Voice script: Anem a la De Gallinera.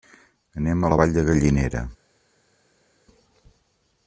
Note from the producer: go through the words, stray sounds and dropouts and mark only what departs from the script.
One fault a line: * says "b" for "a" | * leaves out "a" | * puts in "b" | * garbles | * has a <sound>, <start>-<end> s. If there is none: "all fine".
* puts in "Vall"